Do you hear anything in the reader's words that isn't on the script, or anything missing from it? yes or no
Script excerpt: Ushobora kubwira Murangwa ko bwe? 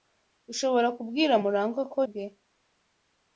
no